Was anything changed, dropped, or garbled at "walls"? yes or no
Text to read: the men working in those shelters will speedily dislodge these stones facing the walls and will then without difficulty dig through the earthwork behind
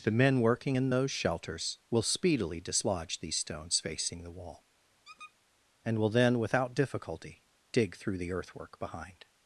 yes